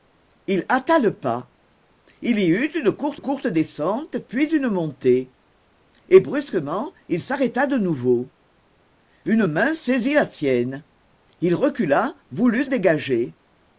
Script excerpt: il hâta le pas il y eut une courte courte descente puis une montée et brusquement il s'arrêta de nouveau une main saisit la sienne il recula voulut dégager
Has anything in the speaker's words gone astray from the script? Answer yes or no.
no